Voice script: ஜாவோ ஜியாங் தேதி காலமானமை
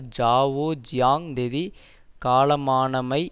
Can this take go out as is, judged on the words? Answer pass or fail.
pass